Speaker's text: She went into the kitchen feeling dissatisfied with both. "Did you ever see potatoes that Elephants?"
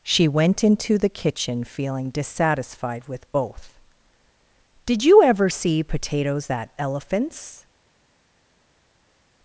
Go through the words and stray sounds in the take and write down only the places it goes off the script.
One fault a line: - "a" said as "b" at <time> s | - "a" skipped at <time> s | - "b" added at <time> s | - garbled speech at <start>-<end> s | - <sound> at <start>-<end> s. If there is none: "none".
none